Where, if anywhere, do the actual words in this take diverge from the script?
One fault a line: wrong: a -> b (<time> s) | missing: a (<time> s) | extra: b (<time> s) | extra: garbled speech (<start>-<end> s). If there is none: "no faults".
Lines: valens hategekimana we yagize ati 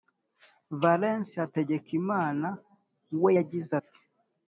no faults